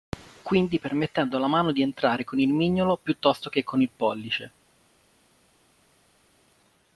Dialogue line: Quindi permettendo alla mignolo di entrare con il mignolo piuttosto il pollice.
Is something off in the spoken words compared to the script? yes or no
yes